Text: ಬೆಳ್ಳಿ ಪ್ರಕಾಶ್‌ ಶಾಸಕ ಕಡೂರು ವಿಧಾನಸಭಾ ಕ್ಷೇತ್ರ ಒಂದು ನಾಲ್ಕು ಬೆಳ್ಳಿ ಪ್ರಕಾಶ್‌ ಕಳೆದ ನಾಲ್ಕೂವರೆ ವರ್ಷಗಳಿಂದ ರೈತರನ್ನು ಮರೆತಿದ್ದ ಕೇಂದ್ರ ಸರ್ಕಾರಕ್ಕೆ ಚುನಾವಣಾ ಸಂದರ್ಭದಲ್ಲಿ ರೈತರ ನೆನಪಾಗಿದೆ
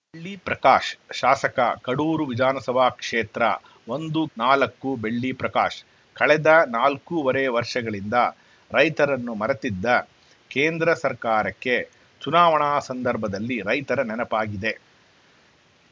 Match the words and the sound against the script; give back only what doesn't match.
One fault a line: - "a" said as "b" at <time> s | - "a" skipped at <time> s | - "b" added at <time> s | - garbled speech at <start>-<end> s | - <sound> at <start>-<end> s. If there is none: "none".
none